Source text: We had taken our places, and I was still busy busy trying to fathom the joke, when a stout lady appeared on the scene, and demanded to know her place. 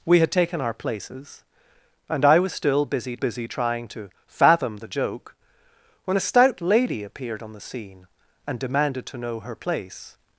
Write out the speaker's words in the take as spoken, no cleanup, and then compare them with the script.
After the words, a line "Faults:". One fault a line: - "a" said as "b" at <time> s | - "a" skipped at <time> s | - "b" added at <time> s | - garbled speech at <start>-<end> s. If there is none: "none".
We had taken our places, and I was still busy busy trying to fathom the joke, when a stout lady appeared on the scene, and demanded to know her place.
Faults:
none